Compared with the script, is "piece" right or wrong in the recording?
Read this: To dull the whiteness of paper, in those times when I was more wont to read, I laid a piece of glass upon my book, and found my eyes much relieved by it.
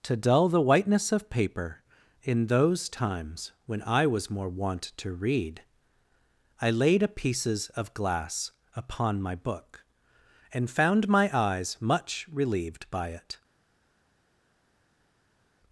wrong